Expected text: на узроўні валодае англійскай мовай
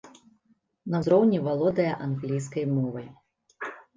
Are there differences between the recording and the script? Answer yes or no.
no